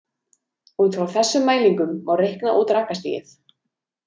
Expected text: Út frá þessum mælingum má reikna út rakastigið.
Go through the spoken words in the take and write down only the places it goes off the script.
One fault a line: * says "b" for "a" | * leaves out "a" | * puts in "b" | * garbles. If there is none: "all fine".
all fine